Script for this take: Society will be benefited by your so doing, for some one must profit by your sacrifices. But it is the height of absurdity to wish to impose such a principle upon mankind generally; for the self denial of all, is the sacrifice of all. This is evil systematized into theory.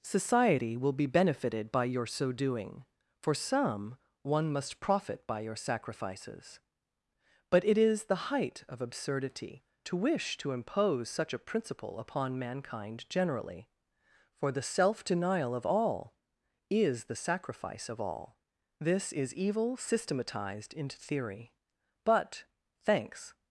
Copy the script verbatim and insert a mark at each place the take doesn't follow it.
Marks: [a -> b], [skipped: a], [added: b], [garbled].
Society will be benefited by your so doing, for some one must profit by your sacrifices. But it is the height of absurdity to wish to impose such a principle upon mankind generally; for the self denial of all, is the sacrifice of all. This is evil systematized into theory. [added: But thanks]